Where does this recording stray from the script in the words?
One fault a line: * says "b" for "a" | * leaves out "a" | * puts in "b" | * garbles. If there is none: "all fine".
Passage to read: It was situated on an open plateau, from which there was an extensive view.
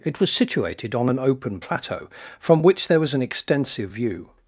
all fine